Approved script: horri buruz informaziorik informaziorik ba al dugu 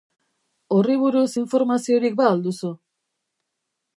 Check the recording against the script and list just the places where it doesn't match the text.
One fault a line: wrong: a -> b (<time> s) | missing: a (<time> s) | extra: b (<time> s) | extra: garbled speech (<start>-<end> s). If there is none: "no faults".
missing: informaziorik (2.2 s)
wrong: dugu -> duzu (2.5 s)